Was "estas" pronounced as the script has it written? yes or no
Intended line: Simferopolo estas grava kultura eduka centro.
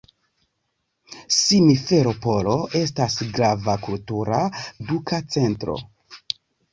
yes